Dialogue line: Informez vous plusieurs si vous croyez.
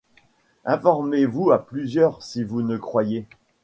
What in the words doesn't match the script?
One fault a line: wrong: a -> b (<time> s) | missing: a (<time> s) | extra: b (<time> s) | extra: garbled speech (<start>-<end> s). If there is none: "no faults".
extra: à (1.5 s)
extra: ne (2.6 s)